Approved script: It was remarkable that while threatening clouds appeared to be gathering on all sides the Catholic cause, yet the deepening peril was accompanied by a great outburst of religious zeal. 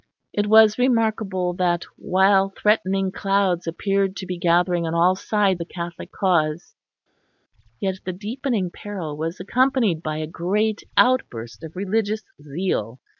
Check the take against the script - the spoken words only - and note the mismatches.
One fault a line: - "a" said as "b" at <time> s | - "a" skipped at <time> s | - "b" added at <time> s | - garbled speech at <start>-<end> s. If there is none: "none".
none